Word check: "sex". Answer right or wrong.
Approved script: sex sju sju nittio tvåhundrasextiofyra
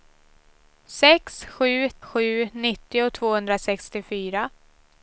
right